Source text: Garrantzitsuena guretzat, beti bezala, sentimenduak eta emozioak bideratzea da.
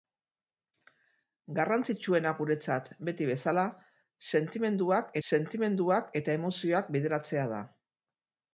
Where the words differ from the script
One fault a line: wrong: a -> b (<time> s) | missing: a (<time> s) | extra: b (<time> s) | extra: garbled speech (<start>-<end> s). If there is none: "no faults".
extra: sentimenduak (5.3 s)